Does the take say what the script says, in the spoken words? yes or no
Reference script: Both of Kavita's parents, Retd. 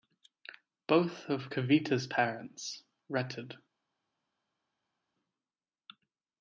yes